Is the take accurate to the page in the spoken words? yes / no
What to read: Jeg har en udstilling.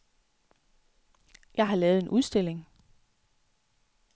no